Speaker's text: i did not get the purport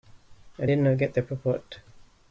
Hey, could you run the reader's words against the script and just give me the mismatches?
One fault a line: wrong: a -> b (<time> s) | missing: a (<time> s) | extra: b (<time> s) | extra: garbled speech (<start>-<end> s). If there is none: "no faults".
no faults